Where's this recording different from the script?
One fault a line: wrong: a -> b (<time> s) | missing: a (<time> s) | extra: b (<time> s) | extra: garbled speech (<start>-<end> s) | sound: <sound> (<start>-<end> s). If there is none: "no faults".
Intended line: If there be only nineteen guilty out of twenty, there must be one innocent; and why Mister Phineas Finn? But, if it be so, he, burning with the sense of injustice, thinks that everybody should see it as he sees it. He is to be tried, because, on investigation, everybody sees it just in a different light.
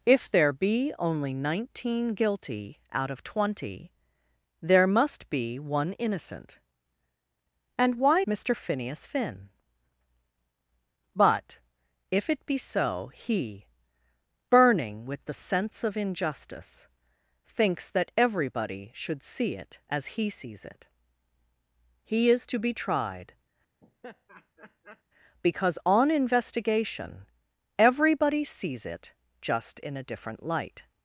sound: laugh (23.8-25.0 s)